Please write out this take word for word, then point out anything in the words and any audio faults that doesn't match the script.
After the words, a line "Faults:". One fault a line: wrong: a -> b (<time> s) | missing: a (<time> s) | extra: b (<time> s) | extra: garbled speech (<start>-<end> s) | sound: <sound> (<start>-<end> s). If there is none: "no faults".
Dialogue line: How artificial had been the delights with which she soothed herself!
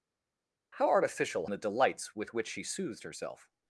How artificial the delights with which she soothed herself!
Faults:
missing: had been (1.5 s)